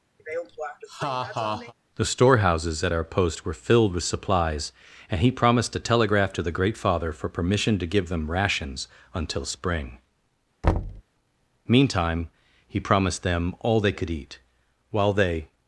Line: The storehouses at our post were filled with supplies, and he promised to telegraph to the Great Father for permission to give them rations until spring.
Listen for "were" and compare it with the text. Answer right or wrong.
right